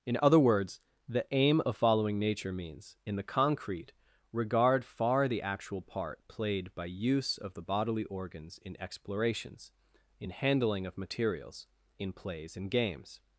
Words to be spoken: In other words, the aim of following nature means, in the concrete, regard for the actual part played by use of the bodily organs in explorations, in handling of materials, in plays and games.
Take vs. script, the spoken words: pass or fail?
fail